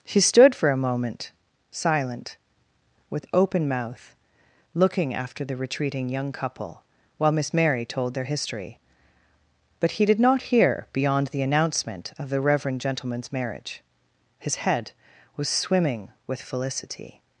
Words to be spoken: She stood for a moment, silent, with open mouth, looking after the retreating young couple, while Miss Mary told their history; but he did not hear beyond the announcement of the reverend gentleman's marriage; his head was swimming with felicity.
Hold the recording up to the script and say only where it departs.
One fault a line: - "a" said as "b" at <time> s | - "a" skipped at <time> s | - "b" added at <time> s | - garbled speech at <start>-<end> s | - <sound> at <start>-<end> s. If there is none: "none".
none